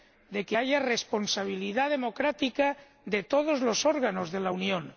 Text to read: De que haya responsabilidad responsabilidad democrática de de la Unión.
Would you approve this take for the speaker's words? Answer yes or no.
no